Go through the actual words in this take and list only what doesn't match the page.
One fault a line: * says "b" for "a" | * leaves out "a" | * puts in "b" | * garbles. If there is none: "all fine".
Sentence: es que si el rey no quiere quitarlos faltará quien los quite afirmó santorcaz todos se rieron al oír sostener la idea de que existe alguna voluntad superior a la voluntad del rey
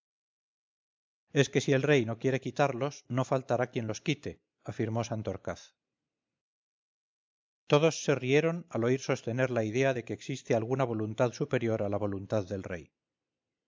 * puts in "no"